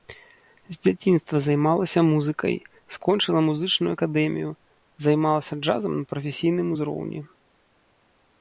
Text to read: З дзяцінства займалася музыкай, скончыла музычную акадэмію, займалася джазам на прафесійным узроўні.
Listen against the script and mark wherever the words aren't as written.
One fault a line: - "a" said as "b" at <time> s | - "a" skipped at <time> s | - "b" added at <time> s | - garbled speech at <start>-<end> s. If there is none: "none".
none